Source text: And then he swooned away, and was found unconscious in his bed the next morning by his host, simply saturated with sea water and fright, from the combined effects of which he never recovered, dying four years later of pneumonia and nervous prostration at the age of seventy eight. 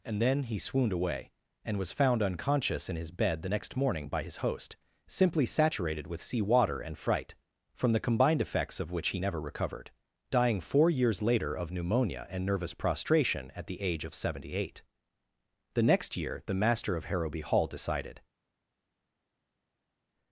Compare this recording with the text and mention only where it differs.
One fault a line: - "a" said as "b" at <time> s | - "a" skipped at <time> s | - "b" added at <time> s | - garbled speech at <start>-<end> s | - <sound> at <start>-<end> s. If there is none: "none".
- "The next year the master of Harrowby Hall decided" added at 15.7 s